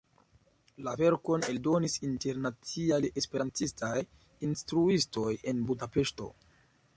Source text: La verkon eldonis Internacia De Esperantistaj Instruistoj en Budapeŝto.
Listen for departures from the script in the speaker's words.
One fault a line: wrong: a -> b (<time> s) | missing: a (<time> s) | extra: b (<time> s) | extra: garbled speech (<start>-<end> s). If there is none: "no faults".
no faults